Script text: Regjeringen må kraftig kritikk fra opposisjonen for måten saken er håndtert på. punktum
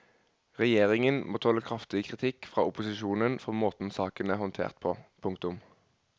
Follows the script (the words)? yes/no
no